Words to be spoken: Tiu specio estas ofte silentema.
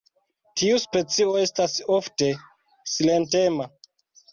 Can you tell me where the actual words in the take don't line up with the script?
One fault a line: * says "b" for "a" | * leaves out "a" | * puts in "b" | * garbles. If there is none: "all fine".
all fine